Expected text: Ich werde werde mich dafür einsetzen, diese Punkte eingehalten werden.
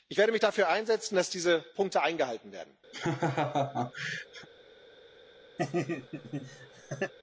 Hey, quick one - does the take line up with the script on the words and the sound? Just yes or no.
no